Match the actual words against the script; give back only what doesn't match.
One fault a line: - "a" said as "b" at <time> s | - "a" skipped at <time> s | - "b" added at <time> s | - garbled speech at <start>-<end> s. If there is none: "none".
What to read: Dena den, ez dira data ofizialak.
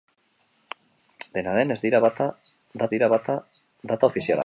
- "dira data" added at 2.9 s